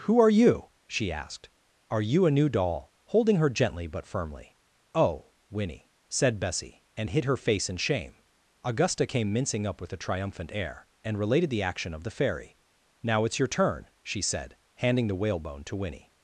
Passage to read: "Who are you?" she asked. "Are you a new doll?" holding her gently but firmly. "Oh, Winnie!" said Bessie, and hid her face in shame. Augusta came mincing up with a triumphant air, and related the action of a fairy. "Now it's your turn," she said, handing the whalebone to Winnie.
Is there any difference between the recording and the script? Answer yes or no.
yes